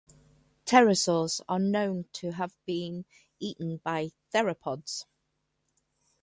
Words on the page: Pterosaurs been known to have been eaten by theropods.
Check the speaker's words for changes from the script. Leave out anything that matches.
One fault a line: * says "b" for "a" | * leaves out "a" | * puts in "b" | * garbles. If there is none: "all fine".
* says "are" for "been"